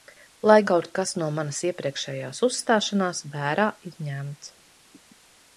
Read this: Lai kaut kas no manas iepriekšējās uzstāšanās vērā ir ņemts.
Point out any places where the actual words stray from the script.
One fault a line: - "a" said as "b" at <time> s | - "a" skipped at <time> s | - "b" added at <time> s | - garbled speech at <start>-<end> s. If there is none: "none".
none